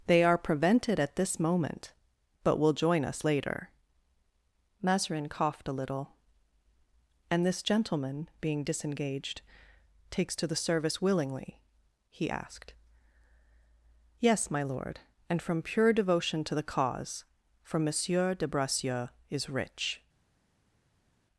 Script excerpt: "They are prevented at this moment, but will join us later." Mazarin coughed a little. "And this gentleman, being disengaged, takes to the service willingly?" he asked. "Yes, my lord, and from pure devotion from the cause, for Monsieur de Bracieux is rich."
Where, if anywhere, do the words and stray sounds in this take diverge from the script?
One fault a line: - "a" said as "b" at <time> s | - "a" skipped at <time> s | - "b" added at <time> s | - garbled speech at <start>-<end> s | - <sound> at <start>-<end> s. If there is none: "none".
- "from" said as "to" at 16.4 s